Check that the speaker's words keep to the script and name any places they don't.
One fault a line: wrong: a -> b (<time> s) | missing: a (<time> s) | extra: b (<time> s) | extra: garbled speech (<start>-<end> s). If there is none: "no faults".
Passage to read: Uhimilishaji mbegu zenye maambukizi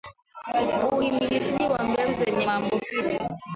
extra: wa (1.6 s)